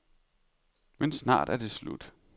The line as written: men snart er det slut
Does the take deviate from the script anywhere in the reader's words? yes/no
no